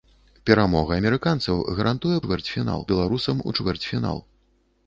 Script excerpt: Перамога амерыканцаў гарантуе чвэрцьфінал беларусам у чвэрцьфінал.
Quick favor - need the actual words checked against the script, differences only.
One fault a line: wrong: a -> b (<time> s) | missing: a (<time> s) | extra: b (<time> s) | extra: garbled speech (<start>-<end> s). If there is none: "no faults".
no faults